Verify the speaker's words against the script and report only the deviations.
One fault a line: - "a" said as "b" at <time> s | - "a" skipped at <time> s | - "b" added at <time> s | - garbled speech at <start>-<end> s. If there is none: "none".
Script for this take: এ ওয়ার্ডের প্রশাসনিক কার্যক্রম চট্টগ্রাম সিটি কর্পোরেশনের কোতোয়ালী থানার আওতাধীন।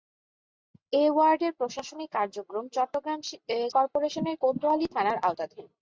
- "সিটি" skipped at 3.2 s